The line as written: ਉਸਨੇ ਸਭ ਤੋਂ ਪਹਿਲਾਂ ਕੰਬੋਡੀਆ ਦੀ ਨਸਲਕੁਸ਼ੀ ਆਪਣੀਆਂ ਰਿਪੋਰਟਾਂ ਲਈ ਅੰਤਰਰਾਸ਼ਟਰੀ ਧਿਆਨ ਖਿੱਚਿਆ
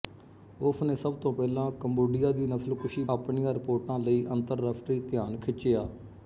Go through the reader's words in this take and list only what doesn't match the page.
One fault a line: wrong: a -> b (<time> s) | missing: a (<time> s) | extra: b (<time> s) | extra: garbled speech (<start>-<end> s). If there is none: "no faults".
no faults